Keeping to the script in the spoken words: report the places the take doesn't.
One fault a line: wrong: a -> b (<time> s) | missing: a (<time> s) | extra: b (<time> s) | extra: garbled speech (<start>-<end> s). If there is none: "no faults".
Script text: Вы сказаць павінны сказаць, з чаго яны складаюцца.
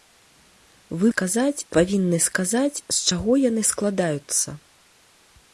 no faults